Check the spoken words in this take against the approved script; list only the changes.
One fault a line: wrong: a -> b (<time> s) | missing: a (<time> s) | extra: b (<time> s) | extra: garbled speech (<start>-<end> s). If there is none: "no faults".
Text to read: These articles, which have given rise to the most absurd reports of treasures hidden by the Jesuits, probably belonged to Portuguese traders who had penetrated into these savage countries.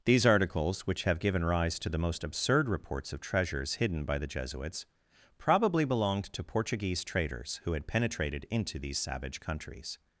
no faults